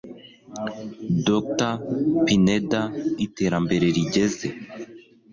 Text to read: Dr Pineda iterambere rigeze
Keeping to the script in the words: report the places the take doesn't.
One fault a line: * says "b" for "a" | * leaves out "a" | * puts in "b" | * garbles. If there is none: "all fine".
all fine